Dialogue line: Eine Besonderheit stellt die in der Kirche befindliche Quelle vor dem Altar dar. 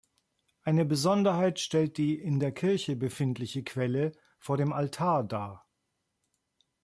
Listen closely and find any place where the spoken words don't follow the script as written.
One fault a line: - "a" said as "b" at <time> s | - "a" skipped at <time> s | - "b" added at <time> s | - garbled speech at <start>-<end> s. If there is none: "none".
none